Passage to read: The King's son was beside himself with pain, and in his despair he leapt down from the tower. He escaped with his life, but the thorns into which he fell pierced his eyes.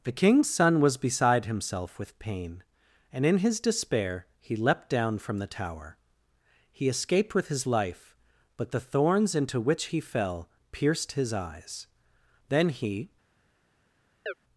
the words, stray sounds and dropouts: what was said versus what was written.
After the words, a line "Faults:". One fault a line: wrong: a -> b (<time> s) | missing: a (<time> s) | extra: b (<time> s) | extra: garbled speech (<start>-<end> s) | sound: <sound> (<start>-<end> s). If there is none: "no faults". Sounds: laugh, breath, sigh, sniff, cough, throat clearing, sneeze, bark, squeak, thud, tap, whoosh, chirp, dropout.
The King's son was beside himself with pain, and in his despair he leapt down from the tower. He escaped with his life, but the thorns into which he fell pierced his eyes. Then he
Faults:
extra: Then he (12.5 s)
sound: chirp (14.3-14.3 s)